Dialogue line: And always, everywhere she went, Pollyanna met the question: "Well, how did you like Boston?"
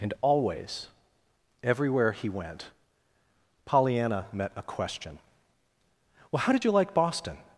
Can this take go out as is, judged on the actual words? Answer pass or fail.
fail